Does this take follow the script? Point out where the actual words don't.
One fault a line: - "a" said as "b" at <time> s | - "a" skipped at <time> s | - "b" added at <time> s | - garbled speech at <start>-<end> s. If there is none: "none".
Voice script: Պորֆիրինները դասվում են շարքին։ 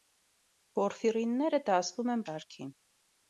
none